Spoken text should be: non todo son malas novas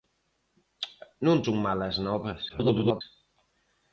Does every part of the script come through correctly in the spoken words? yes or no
no